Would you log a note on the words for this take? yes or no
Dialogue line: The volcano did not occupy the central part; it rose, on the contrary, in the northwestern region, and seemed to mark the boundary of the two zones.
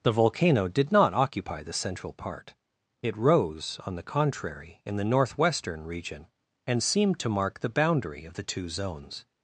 no